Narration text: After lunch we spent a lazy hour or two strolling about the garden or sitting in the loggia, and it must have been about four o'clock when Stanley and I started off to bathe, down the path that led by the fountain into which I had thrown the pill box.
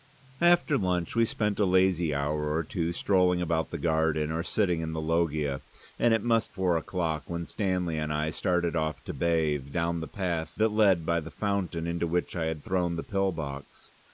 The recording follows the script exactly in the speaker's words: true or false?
false